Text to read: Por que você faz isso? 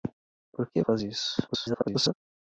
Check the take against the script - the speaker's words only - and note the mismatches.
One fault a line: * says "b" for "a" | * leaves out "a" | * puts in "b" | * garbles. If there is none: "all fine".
* leaves out "você"
* garbles